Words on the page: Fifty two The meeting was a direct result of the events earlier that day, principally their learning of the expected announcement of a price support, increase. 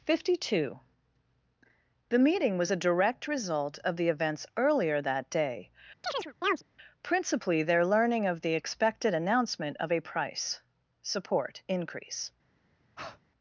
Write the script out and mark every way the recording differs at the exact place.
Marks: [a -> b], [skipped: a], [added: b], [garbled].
Fifty two The meeting was a direct result of the events earlier that day, principally their learning of the expected announcement of a price support, increase.